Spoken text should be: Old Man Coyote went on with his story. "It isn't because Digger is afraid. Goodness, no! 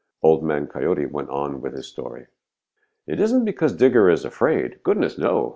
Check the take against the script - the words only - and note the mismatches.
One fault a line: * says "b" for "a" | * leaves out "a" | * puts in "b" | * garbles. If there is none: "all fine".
all fine